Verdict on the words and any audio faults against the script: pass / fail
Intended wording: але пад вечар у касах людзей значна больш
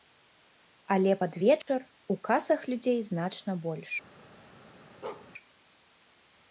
fail